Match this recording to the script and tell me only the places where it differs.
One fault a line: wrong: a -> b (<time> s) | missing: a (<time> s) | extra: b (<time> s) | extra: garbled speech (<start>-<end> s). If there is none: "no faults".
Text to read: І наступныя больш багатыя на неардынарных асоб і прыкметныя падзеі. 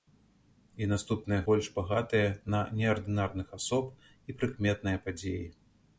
no faults